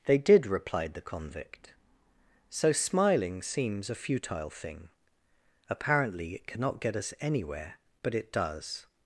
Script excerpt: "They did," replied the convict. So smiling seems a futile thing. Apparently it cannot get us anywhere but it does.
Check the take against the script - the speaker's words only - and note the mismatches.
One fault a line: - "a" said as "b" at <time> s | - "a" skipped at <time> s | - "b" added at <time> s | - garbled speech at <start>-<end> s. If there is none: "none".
none